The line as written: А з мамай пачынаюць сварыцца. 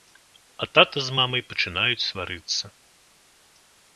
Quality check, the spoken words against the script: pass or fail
fail